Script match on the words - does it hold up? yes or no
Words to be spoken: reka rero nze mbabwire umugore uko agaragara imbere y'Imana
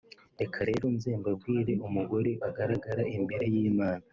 no